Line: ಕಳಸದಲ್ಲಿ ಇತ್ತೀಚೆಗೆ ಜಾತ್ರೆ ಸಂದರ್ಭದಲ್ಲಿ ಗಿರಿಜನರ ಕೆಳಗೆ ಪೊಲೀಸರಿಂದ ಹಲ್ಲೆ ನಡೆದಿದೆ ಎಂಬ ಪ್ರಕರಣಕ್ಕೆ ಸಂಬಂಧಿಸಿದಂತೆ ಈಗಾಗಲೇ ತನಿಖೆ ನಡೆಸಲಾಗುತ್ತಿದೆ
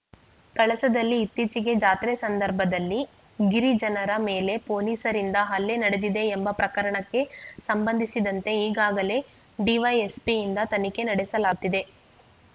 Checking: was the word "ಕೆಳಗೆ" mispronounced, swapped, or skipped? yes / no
yes